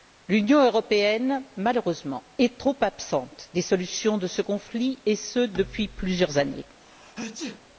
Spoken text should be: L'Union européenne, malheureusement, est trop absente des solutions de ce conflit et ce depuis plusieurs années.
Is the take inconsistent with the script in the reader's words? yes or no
no